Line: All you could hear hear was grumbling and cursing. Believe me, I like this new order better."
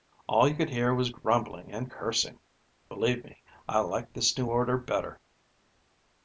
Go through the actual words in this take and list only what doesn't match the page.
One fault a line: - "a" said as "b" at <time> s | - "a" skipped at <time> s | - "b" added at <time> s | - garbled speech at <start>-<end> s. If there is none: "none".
- "hear" skipped at 0.9 s